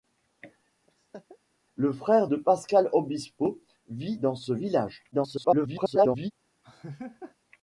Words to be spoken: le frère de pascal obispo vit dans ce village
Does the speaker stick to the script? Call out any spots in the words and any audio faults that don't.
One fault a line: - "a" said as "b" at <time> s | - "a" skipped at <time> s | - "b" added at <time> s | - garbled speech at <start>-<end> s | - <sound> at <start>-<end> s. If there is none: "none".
- laugh at 0.9-1.4 s
- garbled speech at 5.1-6.3 s
- laugh at 6.6-7.4 s